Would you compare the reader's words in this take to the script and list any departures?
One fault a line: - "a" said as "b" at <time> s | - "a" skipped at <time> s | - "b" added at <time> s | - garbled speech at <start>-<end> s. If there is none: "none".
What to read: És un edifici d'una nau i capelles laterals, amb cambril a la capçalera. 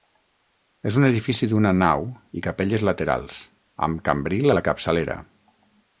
none